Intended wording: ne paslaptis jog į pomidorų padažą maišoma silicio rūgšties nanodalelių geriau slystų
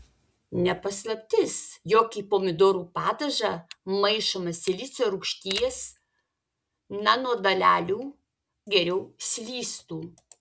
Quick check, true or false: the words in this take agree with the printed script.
true